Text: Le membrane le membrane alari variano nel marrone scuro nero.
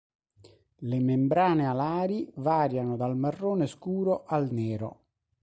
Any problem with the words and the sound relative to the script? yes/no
yes